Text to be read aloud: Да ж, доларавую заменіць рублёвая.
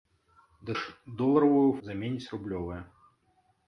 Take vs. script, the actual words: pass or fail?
pass